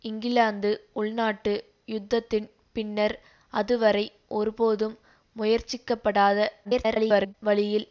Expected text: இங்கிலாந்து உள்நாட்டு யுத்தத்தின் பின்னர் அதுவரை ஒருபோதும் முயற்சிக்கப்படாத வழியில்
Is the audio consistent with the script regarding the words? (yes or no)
no